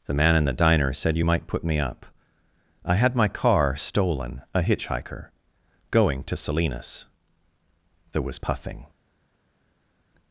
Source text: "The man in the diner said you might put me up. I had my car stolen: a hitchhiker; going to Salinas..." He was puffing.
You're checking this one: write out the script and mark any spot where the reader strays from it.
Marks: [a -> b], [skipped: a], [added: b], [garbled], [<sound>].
"The man in the diner said you might put me up. I had my car stolen: a hitchhiker; going to Salinas..." [He -> There] was puffing.